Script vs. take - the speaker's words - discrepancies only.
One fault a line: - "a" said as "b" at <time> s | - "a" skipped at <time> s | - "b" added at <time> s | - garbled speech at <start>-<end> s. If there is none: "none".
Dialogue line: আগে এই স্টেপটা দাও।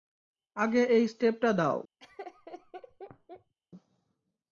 none